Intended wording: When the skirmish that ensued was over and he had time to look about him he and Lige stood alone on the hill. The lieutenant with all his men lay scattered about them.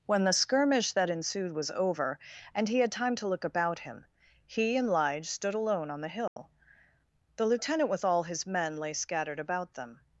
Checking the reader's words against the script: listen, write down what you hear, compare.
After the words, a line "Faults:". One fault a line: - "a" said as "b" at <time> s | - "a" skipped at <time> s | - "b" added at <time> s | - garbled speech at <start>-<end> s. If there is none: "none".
When the skirmish that ensued was over and he had time to look about him he and Lige stood alone on the hill. The lieutenant with all his men lay scattered about them.
Faults:
none